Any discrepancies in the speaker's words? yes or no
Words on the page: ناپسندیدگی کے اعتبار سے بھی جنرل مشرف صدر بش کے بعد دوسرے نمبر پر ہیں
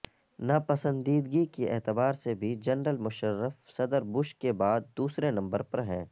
no